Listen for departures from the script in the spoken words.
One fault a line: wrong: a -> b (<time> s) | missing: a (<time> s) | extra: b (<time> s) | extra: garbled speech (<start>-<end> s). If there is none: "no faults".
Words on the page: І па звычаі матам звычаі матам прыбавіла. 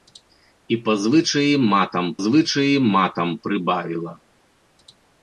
no faults